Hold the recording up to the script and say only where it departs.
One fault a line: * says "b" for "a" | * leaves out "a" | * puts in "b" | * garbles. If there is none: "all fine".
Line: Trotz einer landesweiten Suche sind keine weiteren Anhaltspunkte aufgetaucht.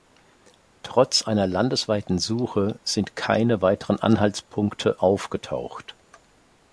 all fine